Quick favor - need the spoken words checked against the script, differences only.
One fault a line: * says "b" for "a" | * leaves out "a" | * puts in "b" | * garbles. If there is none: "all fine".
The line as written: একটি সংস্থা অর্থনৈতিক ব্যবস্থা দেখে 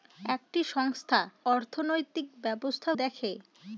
all fine